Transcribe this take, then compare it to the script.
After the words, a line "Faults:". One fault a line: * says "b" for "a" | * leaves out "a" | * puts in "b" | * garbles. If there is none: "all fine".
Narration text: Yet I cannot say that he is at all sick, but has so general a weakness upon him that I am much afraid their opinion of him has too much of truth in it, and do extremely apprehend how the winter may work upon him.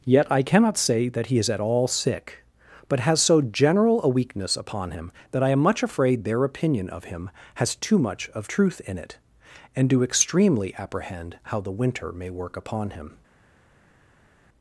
Yet I cannot say that he is at all sick, but has so general a weakness upon him that I am much afraid their opinion of him has too much of truth in it, and do extremely apprehend how the winter may work upon him.
Faults:
all fine